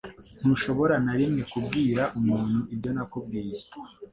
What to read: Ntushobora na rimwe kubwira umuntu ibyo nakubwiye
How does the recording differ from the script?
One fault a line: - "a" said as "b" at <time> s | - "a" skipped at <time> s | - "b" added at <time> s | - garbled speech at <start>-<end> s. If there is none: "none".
none